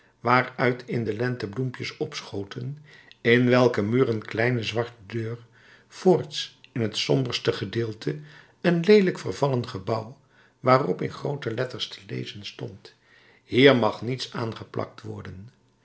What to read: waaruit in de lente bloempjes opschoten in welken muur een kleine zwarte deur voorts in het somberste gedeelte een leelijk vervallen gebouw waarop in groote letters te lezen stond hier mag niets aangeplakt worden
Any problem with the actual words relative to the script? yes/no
no